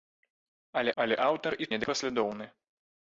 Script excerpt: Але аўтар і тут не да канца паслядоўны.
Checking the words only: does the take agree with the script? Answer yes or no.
no